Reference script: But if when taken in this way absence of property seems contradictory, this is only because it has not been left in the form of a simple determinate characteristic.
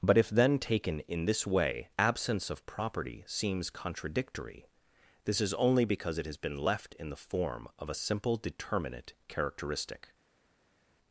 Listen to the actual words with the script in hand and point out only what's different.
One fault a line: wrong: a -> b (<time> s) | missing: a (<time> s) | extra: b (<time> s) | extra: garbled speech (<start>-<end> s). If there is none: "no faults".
wrong: when -> then (0.3 s)
missing: not (6.4 s)